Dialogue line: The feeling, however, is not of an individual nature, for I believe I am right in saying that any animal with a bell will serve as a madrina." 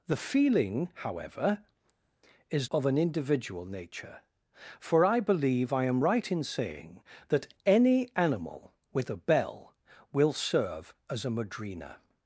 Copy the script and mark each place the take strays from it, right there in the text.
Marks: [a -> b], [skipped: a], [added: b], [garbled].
The feeling, however, is [skipped: not] of an individual nature, for I believe I am right in saying that any animal with a bell will serve as a madrina."